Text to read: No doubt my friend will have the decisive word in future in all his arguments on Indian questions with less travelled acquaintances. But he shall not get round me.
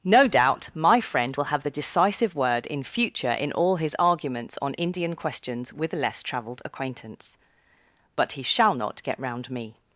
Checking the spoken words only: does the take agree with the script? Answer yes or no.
no